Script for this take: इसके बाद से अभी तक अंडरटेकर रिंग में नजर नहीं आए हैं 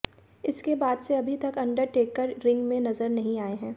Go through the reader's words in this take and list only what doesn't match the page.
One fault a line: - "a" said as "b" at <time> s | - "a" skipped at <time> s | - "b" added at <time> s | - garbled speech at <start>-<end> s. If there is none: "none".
none